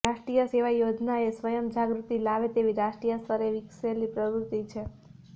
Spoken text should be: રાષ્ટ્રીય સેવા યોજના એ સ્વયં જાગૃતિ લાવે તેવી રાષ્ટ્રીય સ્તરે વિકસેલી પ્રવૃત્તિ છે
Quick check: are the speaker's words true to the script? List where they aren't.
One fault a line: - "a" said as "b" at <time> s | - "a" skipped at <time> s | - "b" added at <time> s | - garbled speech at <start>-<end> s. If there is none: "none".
none